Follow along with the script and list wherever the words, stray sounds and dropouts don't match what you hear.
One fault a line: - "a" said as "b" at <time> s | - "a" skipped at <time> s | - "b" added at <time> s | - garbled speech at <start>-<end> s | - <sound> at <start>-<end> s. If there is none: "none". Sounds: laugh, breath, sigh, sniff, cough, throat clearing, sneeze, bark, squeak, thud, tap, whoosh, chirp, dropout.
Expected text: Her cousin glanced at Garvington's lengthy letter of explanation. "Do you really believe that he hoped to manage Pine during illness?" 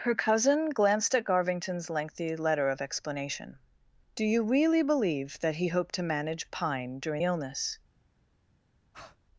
- breath at 8.9-9.2 s